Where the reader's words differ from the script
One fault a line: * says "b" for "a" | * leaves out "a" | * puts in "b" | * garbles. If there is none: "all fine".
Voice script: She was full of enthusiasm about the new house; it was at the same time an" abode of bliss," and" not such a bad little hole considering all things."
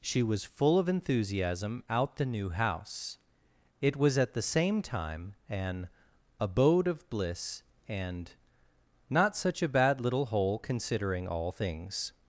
* says "out" for "about"